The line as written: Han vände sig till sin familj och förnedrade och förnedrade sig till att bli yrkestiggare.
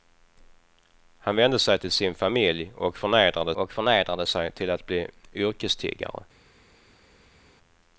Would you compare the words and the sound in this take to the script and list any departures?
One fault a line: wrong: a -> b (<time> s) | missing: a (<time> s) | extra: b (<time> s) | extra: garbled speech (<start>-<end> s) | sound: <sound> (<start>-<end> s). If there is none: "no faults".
no faults